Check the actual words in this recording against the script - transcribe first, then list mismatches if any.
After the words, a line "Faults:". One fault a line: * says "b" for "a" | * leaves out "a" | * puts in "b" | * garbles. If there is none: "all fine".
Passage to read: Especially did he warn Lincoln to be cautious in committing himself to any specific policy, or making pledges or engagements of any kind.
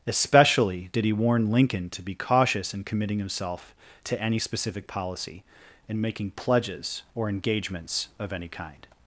Especially did he warn Lincoln to be cautious in committing himself to any specific policy, and making pledges or engagements of any kind.
Faults:
* says "and" for "or"